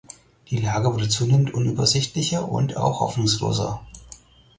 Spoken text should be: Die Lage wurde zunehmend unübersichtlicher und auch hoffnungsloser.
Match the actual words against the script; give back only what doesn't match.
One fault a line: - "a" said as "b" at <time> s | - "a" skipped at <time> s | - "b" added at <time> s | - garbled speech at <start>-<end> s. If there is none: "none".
none